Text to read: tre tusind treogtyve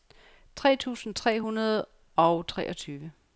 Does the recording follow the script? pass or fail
fail